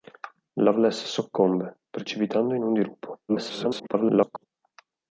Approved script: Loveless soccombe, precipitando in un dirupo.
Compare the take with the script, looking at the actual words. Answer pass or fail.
fail